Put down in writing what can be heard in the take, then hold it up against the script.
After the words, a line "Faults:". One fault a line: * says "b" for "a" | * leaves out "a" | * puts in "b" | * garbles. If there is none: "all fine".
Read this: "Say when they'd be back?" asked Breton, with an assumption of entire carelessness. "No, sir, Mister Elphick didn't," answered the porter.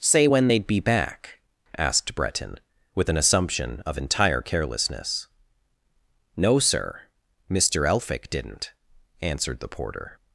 "Say when they'd be back?" asked Breton, with an assumption of entire carelessness. "No, sir, Mister Elphick didn't," answered the porter.
Faults:
all fine